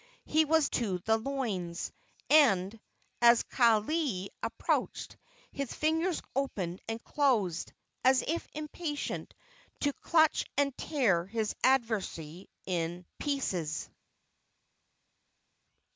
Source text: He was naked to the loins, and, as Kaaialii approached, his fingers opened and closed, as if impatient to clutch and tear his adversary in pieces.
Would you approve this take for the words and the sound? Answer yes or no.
no